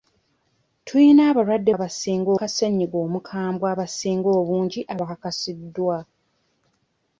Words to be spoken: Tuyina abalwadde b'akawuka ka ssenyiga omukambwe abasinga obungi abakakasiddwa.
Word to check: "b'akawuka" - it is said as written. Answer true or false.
false